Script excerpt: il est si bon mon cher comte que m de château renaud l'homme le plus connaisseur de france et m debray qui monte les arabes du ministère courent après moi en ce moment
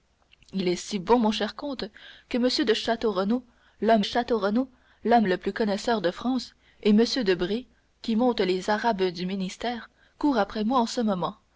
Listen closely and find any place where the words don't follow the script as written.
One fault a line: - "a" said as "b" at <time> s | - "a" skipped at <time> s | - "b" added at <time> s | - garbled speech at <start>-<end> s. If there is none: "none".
- "château renaud l'homme" added at 4.0 s